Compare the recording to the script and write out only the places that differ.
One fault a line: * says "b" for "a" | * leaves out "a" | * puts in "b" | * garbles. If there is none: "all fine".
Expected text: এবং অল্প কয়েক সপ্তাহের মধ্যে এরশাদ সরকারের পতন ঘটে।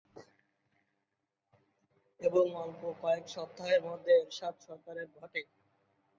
* leaves out "পতন"